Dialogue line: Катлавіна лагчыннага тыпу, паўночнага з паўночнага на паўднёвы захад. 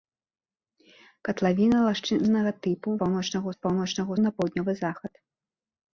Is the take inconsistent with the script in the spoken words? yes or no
no